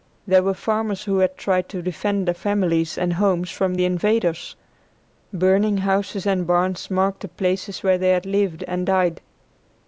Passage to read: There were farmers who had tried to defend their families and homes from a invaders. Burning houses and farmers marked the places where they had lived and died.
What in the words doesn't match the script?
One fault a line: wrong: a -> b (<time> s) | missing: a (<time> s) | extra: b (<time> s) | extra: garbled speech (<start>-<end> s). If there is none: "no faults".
wrong: a -> the (3.7 s)
wrong: farmers -> barns (6.5 s)